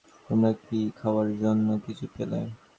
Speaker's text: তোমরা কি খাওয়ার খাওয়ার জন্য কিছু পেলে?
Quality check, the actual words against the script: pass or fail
fail